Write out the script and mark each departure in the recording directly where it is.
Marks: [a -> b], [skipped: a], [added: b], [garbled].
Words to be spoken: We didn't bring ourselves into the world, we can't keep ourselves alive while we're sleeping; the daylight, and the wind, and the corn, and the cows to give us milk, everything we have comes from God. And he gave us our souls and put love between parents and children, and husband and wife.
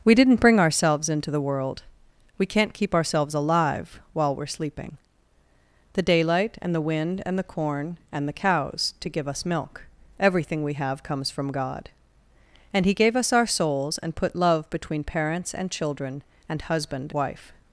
We didn't bring ourselves into the world, we can't keep ourselves alive while we're sleeping; the daylight, and the wind, and the corn, and the cows to give us milk, everything we have comes from God. And he gave us our souls and put love between parents and children, and husband [skipped: and] wife.